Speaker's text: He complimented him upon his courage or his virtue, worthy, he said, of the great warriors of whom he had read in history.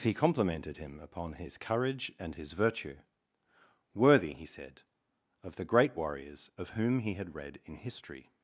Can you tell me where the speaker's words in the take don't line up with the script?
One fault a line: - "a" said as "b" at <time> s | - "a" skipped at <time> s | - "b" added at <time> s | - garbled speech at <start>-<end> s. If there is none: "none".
- "or" said as "and" at 2.2 s